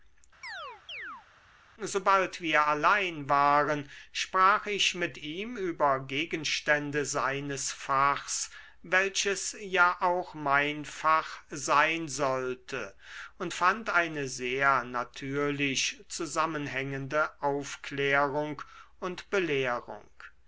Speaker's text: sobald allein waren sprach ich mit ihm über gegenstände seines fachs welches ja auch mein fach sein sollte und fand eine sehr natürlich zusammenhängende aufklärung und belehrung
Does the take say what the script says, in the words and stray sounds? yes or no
no